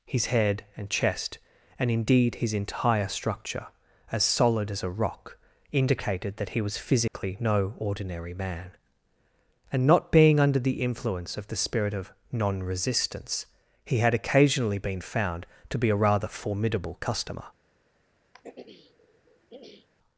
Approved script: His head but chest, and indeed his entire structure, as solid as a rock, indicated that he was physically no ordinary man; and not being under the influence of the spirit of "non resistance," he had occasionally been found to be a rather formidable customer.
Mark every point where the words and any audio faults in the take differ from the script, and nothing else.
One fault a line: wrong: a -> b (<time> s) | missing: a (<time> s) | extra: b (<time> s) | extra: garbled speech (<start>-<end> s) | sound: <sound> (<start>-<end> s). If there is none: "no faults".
wrong: but -> and (0.8 s)
sound: dropout (7.1-7.1 s)
sound: throat clearing (18.3-19.9 s)